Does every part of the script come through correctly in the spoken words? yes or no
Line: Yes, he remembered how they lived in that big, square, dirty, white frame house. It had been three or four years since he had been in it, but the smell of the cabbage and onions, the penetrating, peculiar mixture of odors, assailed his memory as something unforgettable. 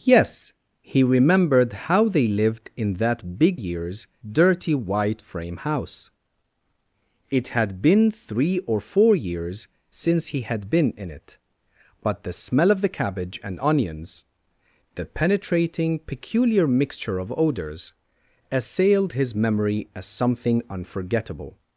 no